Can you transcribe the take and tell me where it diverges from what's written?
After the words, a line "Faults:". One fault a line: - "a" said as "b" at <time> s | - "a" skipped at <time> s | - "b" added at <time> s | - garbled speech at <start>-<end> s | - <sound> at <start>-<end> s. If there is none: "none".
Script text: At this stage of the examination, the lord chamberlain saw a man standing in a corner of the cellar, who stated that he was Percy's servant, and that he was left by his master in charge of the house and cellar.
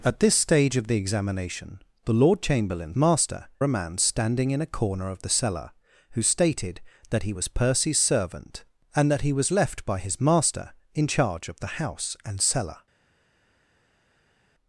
At this stage of the examination, the lord chamberlain master a man standing in a corner of the cellar, who stated that he was Percy's servant, and that he was left by his master in charge of the house and cellar.
Faults:
- "saw" said as "master" at 3.0 s